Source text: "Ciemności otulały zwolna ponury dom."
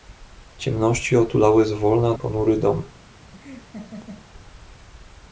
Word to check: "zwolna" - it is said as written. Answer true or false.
true